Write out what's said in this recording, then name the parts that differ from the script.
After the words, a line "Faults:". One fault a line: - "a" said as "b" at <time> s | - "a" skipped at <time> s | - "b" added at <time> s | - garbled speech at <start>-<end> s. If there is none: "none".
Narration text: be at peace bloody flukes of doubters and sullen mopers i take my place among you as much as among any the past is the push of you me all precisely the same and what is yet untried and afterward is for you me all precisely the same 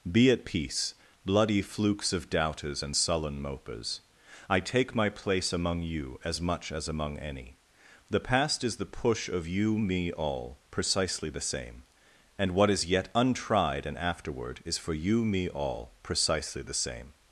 be at peace bloody flukes of doubters and sullen mopers i take my place among you as much as among any the past is the push of you me all precisely the same and what is yet untried and afterward is for you me all precisely the same
Faults:
none